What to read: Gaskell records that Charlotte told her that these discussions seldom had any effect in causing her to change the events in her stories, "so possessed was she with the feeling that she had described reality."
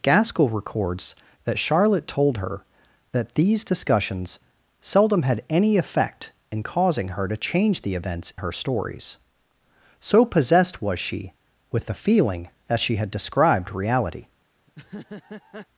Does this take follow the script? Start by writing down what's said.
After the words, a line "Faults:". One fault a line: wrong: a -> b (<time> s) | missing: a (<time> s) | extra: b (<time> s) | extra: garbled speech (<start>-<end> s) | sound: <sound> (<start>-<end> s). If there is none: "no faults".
Gaskell records that Charlotte told her that these discussions seldom had any effect in causing her to change the events her stories, "so possessed was she with the feeling that she had described reality."
Faults:
missing: in (8.3 s)
sound: laugh (14.7-15.7 s)